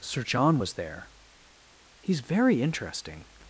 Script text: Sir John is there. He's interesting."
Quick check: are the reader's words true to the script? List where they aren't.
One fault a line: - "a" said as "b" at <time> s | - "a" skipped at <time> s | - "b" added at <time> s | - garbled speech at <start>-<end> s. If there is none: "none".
- "is" said as "was" at 0.6 s
- "very" added at 2.2 s